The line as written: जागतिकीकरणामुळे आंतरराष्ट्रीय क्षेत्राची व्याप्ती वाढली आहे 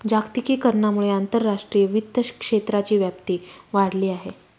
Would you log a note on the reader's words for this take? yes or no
yes